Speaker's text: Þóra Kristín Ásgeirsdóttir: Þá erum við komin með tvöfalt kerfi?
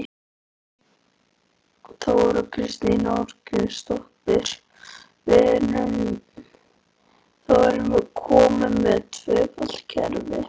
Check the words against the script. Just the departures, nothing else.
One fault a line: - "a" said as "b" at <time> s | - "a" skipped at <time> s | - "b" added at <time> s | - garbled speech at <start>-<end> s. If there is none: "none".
none